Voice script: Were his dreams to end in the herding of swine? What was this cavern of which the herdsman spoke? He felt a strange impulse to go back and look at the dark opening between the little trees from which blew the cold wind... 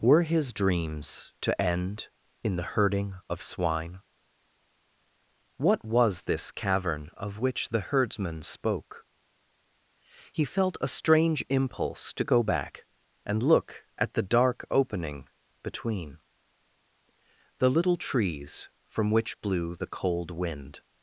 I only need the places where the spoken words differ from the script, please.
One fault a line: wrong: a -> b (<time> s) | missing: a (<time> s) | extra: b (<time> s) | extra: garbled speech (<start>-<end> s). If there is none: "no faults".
no faults